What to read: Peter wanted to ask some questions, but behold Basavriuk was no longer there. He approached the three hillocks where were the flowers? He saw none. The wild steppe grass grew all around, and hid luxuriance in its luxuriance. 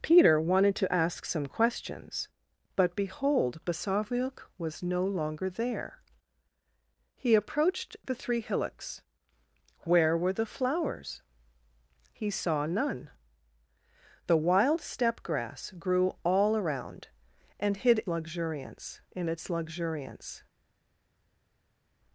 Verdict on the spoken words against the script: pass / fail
pass